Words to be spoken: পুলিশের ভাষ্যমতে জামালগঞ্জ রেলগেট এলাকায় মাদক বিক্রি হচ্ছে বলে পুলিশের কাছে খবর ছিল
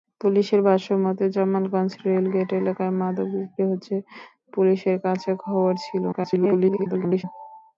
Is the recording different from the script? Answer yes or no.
yes